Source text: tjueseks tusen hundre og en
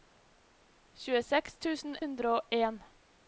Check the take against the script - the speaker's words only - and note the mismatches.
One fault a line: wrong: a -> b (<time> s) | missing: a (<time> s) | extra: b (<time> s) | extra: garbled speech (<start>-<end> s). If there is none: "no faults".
no faults